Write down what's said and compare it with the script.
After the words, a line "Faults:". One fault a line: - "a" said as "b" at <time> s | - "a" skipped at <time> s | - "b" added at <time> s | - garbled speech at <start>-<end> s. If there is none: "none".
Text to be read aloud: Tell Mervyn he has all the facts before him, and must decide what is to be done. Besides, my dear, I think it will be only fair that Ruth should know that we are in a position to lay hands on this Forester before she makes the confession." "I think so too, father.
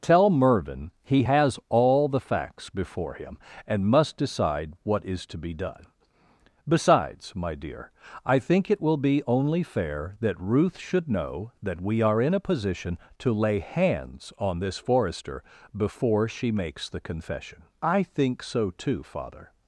Tell Mervyn he has all the facts before him, and must decide what is to be done. Besides, my dear, I think it will be only fair that Ruth should know that we are in a position to lay hands on this Forester before she makes the confession." "I think so too, father.
Faults:
none